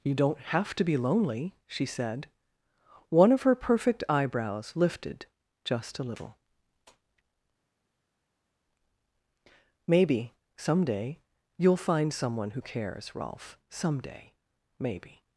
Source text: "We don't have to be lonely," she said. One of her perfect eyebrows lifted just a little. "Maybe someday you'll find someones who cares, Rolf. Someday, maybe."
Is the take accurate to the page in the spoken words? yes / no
no